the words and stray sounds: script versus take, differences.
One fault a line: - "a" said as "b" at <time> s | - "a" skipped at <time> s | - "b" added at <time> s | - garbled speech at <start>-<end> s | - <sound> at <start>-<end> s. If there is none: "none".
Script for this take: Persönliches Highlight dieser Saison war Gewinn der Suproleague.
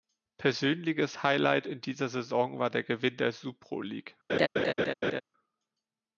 - "in" added at 1.7 s
- "der" added at 2.7 s
- laugh at 4.3-5.2 s